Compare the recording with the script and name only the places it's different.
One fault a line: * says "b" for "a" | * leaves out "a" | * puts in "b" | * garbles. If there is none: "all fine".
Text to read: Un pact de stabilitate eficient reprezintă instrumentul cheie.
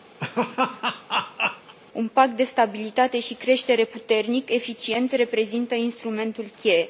* puts in "și creștere puternic"